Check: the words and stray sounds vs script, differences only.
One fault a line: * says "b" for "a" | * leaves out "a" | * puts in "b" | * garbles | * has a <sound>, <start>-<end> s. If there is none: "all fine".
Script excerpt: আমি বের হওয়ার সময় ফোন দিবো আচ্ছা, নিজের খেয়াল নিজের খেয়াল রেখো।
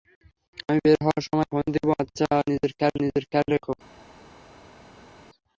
all fine